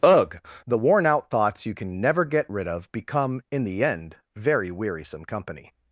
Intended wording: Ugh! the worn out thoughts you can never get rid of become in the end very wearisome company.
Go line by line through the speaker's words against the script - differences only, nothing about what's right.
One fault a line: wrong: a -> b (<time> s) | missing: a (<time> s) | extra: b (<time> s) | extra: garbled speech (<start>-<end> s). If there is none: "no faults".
no faults